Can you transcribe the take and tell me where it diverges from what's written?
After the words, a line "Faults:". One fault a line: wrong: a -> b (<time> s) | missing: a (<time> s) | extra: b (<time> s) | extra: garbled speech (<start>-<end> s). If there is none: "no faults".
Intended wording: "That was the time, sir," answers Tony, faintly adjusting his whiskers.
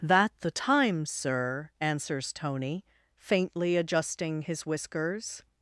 "That the time, sir," answers Tony, faintly adjusting his whiskers.
Faults:
missing: was (0.3 s)